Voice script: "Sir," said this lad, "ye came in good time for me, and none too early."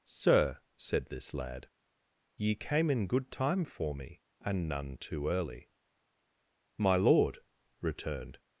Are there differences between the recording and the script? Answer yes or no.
yes